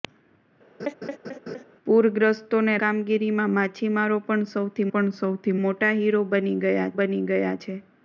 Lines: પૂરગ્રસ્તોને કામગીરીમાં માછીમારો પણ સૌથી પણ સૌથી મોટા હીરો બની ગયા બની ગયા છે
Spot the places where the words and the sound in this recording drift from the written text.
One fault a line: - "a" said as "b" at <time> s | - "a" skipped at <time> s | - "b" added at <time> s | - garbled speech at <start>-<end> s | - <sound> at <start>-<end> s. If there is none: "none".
- laugh at 0.8-1.6 s